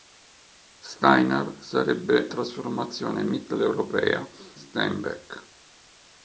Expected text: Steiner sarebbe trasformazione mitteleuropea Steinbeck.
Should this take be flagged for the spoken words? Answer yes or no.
no